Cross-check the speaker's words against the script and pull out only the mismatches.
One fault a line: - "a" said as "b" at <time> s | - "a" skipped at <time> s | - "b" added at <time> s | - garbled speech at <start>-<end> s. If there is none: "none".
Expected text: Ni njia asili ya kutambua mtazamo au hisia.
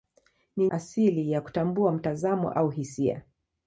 - "njia" skipped at 0.7 s